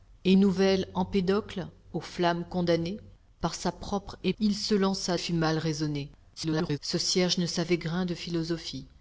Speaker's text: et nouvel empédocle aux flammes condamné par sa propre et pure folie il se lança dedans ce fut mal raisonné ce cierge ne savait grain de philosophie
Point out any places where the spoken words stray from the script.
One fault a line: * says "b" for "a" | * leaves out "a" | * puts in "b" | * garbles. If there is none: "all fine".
* leaves out "pure folie"
* leaves out "dedans ce"
* garbles